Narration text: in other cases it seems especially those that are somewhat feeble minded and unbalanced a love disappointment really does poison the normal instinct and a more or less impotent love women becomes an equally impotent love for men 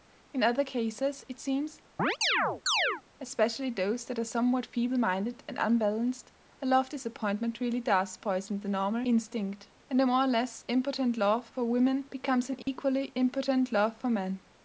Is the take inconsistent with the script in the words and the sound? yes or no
yes